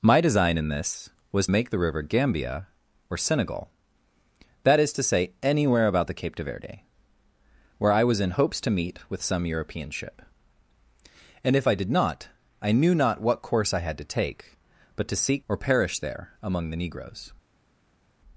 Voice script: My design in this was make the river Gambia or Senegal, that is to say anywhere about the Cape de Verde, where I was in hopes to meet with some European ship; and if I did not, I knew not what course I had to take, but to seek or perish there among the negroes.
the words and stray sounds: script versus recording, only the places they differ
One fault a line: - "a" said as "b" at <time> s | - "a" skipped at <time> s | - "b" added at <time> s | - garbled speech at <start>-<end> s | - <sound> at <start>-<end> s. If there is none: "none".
none